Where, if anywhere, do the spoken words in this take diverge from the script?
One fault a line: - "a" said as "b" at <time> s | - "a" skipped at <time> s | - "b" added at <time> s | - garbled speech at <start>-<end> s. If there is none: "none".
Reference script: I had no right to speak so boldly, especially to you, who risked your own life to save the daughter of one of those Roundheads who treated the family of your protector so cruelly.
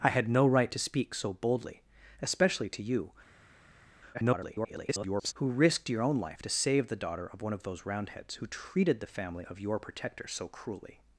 - garbled speech at 4.1-5.3 s